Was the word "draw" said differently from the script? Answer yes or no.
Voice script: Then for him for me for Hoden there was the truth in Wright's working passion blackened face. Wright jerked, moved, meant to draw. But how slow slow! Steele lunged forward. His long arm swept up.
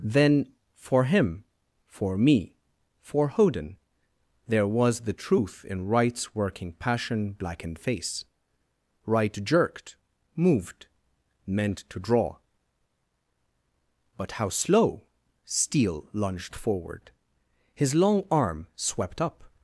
no